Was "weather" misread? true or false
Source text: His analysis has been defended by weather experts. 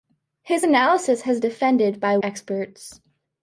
true